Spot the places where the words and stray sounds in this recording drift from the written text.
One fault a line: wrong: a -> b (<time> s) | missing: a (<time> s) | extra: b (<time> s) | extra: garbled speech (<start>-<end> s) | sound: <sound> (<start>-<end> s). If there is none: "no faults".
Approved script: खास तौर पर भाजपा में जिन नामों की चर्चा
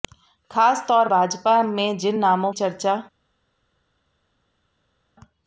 missing: पर (1.1 s)
missing: की (2.5 s)